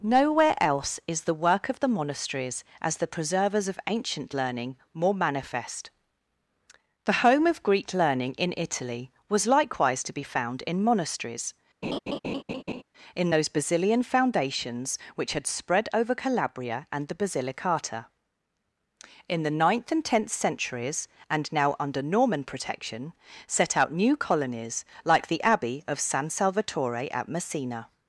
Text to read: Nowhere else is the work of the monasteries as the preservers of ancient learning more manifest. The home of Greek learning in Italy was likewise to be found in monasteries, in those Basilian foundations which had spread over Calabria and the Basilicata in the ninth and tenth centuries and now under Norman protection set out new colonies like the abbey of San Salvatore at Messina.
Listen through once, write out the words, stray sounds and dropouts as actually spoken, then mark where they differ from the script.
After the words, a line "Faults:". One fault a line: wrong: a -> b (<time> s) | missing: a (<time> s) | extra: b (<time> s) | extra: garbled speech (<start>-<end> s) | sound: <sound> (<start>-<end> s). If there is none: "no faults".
Nowhere else is the work of the monasteries as the preservers of ancient learning more manifest. The home of Greek learning in Italy was likewise to be found in monasteries, in those Basilian foundations which had spread over Calabria and the Basilicata in the ninth and tenth centuries and now under Norman protection set out new colonies like the abbey of San Salvatore at Messina.
Faults:
sound: laugh (11.8-12.8 s)